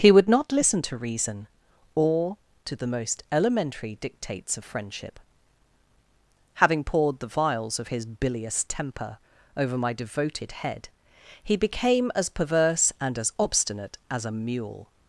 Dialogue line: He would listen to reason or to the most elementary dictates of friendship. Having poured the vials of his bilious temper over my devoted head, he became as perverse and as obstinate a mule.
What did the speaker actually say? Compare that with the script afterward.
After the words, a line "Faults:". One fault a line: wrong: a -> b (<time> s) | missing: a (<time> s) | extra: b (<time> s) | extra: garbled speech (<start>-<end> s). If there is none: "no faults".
He would not listen to reason or to the most elementary dictates of friendship. Having poured the vials of his bilious temper over my devoted head, he became as perverse and as obstinate as a mule.
Faults:
extra: not (0.3 s)
extra: as (14.1 s)